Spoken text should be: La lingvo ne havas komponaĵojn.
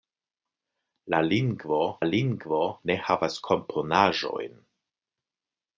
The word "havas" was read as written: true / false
true